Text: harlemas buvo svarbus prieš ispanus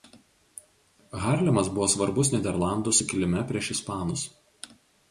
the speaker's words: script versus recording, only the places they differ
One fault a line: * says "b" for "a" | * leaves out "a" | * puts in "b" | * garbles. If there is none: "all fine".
* puts in "nyderlandų sukilime"